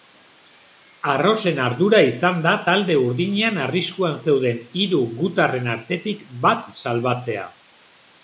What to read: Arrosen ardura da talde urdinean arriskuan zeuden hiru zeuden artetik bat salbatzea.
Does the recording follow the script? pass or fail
fail